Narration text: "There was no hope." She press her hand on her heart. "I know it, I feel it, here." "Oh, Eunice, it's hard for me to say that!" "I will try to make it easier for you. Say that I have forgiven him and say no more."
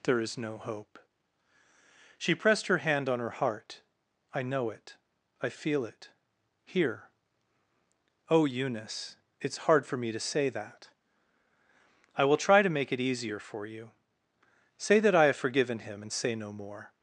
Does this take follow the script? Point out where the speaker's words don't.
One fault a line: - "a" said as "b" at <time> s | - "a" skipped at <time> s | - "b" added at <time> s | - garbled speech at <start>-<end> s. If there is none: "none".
- "was" said as "is" at 0.2 s
- "press" said as "pressed" at 2.4 s